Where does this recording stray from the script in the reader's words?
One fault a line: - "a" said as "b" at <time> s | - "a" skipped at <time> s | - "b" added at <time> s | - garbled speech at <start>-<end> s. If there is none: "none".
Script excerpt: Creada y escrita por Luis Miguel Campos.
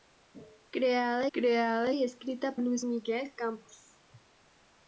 - "creada" added at 1.3 s
- "por" skipped at 2.6 s